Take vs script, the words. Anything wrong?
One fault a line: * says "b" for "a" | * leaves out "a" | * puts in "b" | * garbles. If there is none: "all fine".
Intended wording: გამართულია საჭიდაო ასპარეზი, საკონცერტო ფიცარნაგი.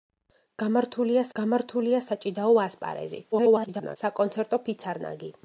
* puts in "გამართულია"
* garbles